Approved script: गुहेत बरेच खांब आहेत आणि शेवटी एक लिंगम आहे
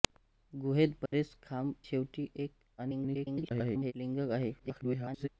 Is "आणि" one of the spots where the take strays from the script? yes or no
yes